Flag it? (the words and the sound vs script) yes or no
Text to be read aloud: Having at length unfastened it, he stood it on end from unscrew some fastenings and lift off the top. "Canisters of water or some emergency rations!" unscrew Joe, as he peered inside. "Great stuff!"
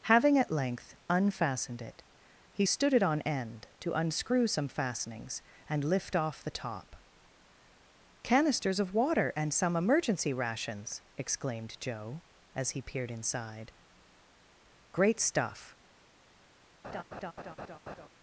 yes